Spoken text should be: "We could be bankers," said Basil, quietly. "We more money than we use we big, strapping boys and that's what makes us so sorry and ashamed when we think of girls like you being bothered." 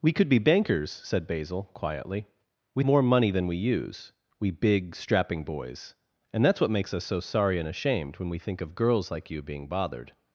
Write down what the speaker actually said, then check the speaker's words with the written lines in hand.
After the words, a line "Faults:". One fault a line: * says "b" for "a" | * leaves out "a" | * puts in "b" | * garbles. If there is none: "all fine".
"We could be bankers," said Basil, quietly. "We more money than we use we big, strapping boys and that's what makes us so sorry and ashamed when we think of girls like you being bothered."
Faults:
all fine